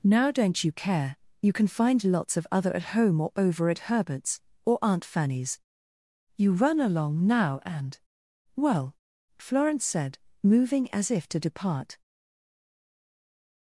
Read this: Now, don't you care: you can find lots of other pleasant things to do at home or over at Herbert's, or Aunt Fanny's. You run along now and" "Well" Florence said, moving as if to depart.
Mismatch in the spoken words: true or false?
true